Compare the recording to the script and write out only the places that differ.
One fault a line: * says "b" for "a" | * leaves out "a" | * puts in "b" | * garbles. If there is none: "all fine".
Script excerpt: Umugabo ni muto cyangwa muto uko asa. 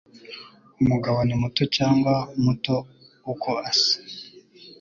all fine